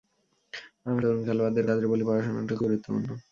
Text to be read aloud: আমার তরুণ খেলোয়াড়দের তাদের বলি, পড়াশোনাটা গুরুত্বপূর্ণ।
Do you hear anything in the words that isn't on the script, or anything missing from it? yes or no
no